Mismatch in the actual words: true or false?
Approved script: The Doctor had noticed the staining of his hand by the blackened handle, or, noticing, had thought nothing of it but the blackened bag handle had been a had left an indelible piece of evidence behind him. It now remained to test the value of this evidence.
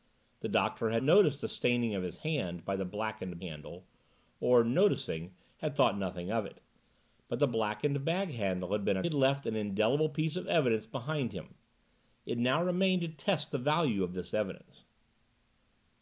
false